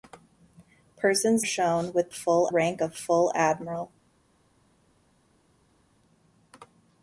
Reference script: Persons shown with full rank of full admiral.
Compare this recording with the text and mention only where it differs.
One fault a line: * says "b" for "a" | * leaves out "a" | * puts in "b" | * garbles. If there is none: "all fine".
all fine